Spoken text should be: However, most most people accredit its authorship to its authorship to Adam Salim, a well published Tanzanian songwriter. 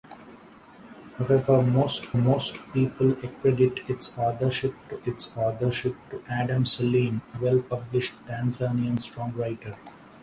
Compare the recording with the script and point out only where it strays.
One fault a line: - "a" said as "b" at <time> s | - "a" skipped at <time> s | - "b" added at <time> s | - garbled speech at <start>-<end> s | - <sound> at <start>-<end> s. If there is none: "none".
none